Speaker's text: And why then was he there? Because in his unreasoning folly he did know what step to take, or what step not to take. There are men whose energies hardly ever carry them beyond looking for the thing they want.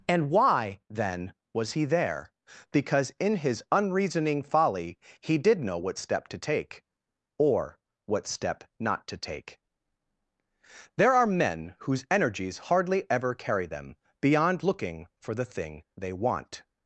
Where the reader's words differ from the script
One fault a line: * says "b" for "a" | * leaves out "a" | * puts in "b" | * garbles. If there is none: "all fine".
all fine